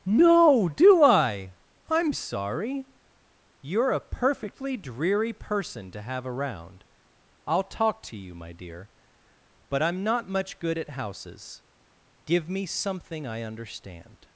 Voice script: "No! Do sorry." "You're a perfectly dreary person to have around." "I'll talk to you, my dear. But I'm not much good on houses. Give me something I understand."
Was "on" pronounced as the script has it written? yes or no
no